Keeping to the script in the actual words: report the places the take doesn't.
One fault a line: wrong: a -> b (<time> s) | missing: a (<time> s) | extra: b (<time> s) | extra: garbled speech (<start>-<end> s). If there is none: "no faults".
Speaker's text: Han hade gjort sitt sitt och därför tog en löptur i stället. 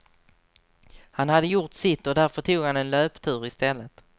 missing: sitt (2.1 s)
extra: han (2.6 s)